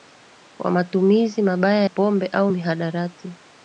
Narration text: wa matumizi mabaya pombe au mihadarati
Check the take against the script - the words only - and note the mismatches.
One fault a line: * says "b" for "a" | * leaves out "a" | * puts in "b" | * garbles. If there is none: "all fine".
all fine